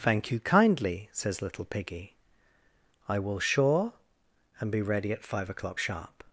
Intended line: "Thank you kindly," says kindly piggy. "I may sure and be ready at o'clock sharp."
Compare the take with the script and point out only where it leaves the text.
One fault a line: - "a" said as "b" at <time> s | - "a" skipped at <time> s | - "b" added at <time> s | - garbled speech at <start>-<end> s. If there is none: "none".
- "kindly" said as "little" at 1.4 s
- "may" said as "will" at 3.2 s
- "five" added at 5.2 s